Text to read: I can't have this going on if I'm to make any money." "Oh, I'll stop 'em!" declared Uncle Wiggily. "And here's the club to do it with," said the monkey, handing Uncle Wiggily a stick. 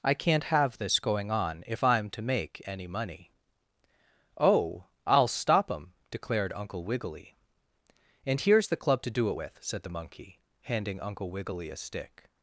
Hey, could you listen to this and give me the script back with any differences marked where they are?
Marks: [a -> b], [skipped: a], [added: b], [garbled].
I can't have this going on if I'm to make any money." "Oh, I'll stop 'em!" declared Uncle Wiggily. "And here's the club to do it with," said the monkey, handing Uncle Wiggily a stick.